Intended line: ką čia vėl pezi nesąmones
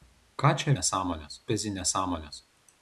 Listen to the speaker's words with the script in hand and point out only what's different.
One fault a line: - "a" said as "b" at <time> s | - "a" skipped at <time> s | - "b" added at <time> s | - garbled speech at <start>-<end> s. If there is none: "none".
- "vėl" said as "nesąmones" at 0.7 s